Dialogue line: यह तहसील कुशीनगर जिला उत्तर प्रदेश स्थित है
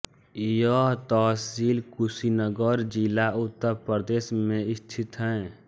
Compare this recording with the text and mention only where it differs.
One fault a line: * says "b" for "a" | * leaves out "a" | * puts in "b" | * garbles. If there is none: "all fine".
* puts in "में"